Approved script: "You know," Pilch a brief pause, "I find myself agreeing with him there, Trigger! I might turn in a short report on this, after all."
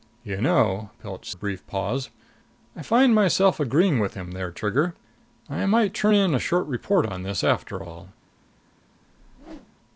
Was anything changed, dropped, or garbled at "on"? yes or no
no